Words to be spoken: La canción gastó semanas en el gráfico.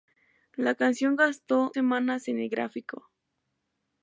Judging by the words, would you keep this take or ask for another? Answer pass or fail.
pass